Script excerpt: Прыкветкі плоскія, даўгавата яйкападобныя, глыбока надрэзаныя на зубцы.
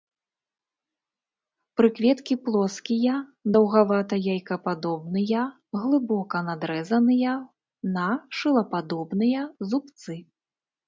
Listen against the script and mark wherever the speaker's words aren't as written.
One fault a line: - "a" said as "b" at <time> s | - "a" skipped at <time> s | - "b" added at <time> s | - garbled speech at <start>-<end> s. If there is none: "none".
- "шылападобныя" added at 8.4 s